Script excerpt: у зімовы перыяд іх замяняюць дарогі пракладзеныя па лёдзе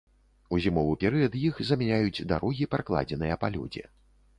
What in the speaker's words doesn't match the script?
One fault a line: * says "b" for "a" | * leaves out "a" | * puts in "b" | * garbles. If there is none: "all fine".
all fine